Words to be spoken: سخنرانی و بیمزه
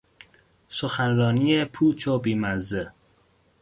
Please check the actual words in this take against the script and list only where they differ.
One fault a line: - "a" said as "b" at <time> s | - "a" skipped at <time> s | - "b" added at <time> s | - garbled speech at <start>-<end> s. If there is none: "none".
- "پوچ" added at 1.6 s